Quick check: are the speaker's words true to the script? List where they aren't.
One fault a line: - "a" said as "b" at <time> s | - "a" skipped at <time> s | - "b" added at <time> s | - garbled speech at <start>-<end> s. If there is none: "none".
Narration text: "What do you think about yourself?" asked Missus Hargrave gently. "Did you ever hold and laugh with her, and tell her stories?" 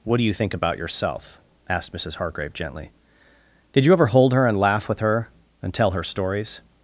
- "her" added at 4.3 s